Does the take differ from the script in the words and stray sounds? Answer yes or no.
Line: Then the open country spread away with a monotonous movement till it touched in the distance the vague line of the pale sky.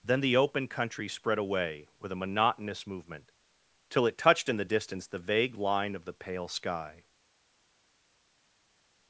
no